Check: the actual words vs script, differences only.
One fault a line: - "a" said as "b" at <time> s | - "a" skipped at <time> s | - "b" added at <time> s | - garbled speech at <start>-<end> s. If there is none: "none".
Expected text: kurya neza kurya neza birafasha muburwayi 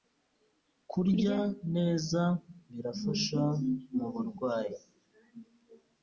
- "kurya neza" skipped at 2.2 s